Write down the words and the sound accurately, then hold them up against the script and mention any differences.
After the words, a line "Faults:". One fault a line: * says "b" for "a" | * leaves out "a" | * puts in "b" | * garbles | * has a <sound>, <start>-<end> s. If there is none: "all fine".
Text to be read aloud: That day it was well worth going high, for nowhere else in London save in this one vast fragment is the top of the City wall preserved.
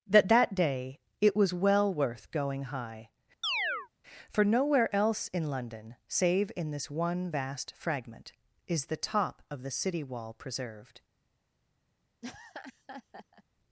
That that day it was well worth going high, for nowhere else in London save in this one vast fragment is the top of the City wall preserved.
Faults:
* puts in "that"
* has a chirp, 3.4-3.9 s
* has a laugh, 12.2-13.4 s